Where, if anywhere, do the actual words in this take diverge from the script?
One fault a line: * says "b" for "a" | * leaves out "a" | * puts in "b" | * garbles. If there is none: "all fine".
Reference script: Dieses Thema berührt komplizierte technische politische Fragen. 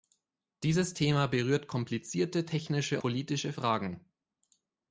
all fine